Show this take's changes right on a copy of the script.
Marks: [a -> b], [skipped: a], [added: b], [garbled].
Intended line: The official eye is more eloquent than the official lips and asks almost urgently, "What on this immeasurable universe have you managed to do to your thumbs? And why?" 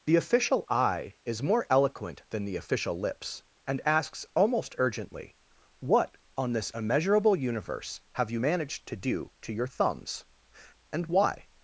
The official eye is more eloquent than the official lips and asks almost urgently, "What on this immeasurable universe have you managed to do to your thumbs? And why?"